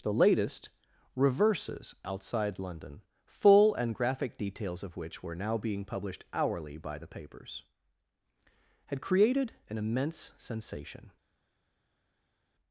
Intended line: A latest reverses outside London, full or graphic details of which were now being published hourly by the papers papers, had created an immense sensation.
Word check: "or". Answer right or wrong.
wrong